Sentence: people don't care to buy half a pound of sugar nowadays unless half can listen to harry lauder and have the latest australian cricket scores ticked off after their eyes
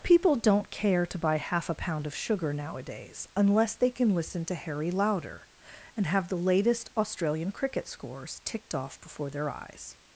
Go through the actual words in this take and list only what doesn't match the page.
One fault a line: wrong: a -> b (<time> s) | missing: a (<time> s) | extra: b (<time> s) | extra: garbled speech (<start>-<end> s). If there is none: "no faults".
wrong: half -> they (3.8 s)
wrong: after -> before (9.0 s)